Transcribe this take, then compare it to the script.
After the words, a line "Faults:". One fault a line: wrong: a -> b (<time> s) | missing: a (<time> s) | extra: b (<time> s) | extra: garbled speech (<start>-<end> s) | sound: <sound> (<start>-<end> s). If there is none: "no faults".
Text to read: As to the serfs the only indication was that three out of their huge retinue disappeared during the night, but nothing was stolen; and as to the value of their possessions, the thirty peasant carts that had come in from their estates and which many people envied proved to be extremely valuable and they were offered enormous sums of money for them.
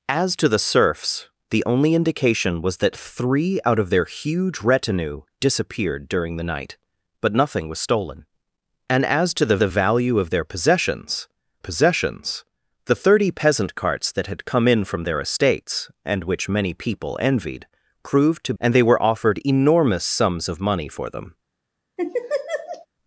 As to the serfs the only indication was that three out of their huge retinue disappeared during the night, but nothing was stolen; and as to the the value of their possessions possessions, the thirty peasant carts that had come in from their estates and which many people envied proved to and they were offered enormous sums of money for them.
Faults:
extra: the (9.6 s)
extra: possessions (11.6 s)
missing: be extremely valuable (18.5 s)
sound: laugh (22.0-22.9 s)